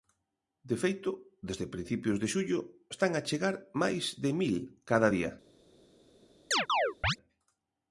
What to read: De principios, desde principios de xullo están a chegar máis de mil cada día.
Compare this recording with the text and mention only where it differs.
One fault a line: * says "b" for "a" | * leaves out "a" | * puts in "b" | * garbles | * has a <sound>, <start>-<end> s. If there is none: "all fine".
* says "feito" for "principios"
* has a chirp, 6.5-7.2 s